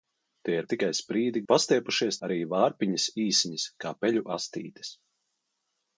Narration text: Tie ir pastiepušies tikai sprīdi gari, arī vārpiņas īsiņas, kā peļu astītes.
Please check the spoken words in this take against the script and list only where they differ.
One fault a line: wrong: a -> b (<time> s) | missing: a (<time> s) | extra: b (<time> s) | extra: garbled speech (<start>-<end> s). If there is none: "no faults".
missing: pastiepušies (0.7 s)
wrong: gari -> pastiepušies (1.5 s)